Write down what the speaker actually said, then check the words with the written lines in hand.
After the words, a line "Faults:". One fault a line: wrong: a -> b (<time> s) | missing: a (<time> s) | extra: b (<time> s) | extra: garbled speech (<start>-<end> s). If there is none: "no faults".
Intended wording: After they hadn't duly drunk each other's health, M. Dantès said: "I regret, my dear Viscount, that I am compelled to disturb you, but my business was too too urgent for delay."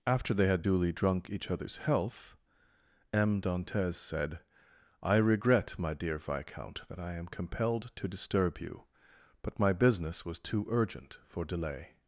After they had duly drunk each other's health, M. Dantès said: "I regret, my dear Viscount, that I am compelled to disturb you, but my business was too urgent for delay."
Faults:
wrong: hadn't -> had (0.5 s)
missing: too (10.6 s)